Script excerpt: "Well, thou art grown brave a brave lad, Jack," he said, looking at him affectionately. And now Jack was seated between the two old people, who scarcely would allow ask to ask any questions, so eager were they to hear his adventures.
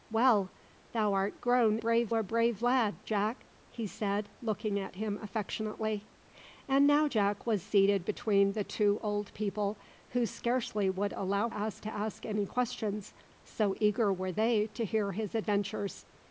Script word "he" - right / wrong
right